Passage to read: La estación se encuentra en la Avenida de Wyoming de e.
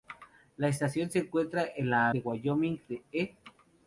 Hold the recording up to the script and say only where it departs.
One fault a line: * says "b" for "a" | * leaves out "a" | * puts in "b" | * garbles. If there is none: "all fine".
* leaves out "Avenida"